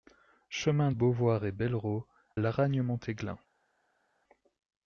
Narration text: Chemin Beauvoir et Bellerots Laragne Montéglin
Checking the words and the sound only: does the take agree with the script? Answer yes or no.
yes